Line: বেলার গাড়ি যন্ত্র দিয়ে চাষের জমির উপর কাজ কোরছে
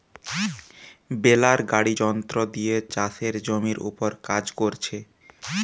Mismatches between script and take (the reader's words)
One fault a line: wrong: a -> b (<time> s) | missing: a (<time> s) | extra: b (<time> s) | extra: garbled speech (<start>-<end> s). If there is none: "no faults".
no faults